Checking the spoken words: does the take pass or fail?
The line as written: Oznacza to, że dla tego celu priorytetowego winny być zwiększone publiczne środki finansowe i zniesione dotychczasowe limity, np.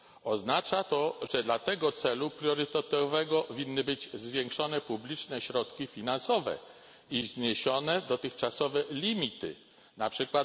pass